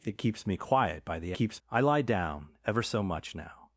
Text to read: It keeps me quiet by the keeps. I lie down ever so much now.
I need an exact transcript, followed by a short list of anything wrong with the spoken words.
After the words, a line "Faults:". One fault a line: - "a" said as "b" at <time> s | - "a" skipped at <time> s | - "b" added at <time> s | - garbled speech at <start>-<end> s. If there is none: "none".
It keeps me quiet by the keeps. I lie down ever so much now.
Faults:
none